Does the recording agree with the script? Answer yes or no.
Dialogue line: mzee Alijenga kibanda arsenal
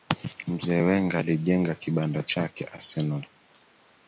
no